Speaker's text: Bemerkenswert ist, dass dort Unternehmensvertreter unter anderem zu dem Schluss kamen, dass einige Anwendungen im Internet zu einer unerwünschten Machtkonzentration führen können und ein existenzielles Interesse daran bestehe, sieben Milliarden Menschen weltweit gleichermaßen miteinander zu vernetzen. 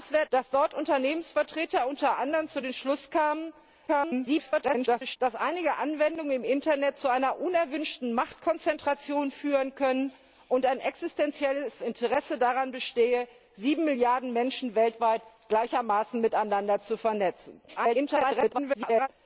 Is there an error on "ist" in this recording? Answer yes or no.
yes